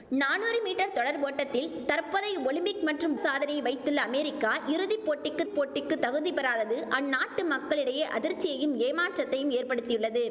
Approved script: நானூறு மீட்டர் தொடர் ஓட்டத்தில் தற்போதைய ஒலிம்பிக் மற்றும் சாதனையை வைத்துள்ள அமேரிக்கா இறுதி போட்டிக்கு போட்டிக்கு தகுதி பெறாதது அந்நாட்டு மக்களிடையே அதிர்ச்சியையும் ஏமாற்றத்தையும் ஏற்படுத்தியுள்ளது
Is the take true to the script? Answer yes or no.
yes